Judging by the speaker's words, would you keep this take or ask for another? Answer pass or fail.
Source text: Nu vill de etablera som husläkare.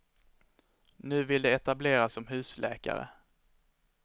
pass